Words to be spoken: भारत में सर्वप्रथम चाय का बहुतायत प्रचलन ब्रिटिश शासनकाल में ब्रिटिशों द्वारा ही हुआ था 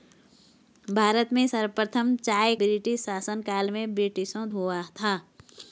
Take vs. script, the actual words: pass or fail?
fail